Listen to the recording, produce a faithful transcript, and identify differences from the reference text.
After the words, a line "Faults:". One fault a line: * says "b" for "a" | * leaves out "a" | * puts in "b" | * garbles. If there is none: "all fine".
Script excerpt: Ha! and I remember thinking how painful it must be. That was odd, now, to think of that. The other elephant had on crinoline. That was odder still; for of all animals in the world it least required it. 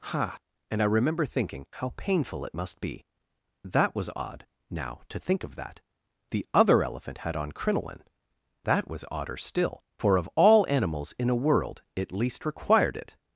Ha! and I remember thinking how painful it must be. That was odd, now, to think of that. The other elephant had on crinoline. That was odder still; for of all animals in a world it least required it.
Faults:
* says "a" for "the"